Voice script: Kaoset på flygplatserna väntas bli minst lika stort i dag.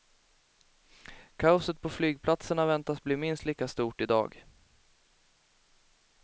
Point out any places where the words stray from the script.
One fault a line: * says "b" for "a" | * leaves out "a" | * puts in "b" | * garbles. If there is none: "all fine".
all fine